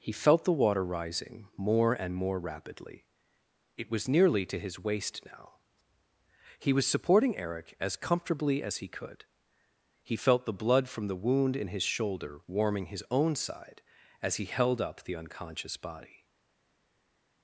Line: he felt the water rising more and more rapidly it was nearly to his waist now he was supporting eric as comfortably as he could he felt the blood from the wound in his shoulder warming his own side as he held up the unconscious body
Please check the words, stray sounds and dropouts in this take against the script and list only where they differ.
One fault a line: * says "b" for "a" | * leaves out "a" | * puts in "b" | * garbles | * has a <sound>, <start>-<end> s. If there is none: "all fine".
all fine